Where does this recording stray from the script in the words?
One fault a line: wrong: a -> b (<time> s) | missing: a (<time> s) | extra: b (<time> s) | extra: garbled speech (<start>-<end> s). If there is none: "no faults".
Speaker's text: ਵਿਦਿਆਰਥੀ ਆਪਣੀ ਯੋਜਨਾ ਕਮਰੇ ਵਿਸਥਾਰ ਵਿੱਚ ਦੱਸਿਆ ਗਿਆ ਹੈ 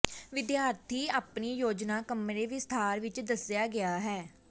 no faults